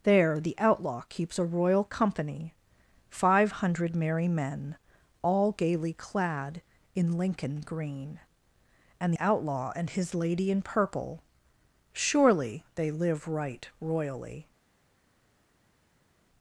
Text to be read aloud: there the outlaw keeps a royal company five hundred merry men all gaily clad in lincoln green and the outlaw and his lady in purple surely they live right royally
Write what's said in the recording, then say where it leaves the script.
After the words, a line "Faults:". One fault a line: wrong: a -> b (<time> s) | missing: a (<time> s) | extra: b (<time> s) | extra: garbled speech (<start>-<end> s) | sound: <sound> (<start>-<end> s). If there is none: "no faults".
there the outlaw keeps a royal company five hundred merry men all gaily clad in lincoln green and outlaw and his lady in purple surely they live right royally
Faults:
missing: the (9.1 s)